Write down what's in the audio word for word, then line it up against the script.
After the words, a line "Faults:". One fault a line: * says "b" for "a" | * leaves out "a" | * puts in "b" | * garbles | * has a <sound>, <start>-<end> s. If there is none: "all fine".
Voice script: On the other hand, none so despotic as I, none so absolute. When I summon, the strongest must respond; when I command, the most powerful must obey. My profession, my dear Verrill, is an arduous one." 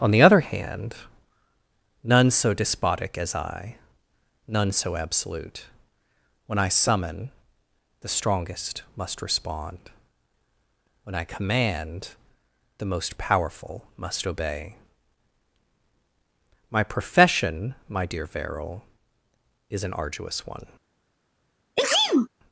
On the other hand, none so despotic as I, none so absolute. When I summon, the strongest must respond; when I command, the most powerful must obey. My profession, my dear Verrill, is an arduous one."
Faults:
* has a sneeze, 21.8-22.3 s